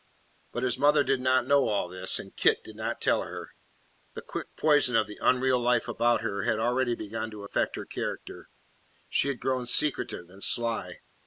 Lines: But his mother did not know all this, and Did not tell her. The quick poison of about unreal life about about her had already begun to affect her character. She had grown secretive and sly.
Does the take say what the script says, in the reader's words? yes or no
no